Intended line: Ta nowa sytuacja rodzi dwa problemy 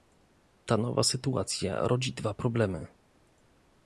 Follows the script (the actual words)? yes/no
yes